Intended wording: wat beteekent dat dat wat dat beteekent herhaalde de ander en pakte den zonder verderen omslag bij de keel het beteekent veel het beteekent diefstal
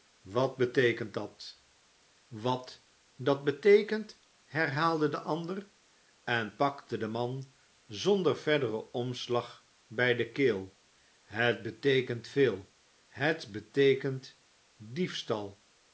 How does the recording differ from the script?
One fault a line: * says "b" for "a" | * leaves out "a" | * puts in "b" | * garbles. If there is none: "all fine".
* leaves out "dat"
* puts in "man"